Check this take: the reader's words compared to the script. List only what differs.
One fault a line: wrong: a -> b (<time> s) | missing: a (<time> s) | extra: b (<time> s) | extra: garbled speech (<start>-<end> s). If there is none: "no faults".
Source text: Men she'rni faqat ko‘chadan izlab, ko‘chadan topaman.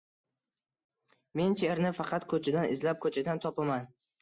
no faults